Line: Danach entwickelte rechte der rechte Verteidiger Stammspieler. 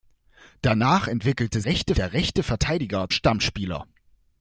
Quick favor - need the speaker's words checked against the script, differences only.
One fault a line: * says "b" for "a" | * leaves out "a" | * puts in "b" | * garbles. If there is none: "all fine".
all fine